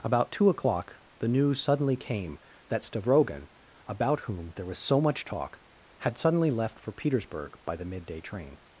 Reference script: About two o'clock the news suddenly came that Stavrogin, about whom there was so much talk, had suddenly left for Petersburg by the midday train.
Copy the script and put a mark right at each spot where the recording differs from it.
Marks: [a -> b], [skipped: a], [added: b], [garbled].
About two o'clock the news suddenly came that Stavrogin, about whom there was so much talk, had suddenly left for Petersburg by the midday train.